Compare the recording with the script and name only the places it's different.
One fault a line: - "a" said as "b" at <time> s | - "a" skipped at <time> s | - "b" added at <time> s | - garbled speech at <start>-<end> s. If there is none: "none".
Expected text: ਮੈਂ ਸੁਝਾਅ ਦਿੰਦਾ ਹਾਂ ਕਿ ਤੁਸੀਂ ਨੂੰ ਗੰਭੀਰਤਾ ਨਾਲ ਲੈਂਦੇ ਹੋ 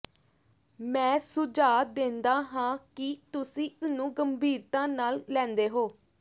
none